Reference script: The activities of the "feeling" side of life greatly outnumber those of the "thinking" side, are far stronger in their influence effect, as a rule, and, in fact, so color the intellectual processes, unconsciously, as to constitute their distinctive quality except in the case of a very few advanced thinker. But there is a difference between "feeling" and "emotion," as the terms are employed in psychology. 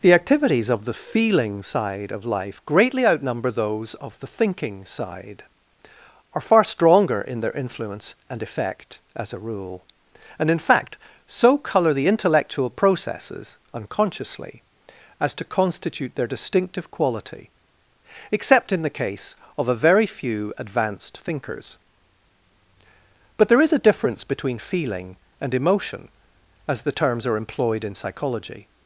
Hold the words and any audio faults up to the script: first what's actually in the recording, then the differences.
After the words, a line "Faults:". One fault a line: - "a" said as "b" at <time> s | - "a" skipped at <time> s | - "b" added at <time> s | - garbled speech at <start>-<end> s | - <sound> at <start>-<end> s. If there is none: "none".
The activities of the "feeling" side of life greatly outnumber those of the "thinking" side, are far stronger in their influence and effect, as a rule, and, in fact, so color the intellectual processes, unconsciously, as to constitute their distinctive quality except in the case of a very few advanced thinkers. But there is a difference between "feeling" and "emotion," as the terms are employed in psychology.
Faults:
- "and" added at 8.3 s
- "thinker" said as "thinkers" at 21.2 s